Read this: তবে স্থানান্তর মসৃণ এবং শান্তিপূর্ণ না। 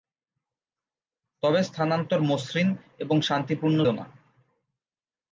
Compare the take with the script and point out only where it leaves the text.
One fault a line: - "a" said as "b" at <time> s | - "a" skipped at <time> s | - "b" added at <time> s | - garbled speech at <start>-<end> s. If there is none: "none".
none